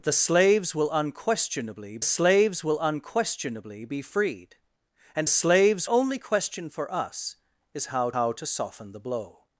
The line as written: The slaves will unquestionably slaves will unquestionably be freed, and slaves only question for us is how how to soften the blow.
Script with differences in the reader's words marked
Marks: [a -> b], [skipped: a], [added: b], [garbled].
The slaves will unquestionably slaves will unquestionably be freed, and slaves only question for us is how how to soften the blow.